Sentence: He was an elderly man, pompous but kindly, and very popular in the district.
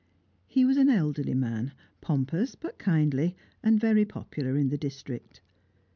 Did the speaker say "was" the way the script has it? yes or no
yes